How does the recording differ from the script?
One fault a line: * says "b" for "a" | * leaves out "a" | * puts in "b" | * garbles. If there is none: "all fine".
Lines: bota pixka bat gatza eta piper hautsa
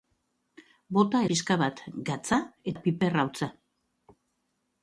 all fine